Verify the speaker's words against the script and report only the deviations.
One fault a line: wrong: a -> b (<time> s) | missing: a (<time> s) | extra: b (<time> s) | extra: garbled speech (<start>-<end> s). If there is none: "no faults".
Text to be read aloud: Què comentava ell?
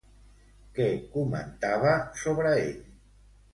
extra: sobre (2.2 s)